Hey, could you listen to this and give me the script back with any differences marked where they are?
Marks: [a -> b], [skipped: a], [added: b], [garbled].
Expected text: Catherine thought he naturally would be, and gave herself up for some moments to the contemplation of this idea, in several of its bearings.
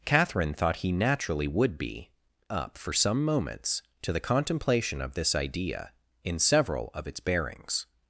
Catherine thought he naturally would be, [skipped: and gave herself] up for some moments to the contemplation of this idea, in several of its bearings.